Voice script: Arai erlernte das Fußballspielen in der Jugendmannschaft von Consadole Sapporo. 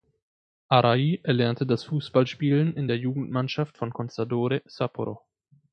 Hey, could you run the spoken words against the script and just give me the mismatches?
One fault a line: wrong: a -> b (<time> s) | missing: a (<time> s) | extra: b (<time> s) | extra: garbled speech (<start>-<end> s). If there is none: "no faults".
no faults